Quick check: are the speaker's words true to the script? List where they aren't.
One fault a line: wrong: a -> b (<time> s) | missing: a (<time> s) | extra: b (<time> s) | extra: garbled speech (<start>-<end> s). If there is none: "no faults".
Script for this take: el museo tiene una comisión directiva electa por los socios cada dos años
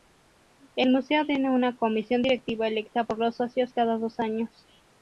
no faults